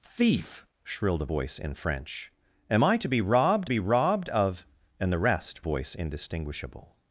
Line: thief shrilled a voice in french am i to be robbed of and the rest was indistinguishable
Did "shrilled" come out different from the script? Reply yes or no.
no